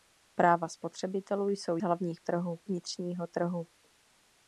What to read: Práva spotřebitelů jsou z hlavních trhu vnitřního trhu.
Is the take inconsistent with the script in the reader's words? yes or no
no